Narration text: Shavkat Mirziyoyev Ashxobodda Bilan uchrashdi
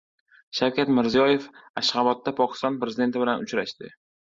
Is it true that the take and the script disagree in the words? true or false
true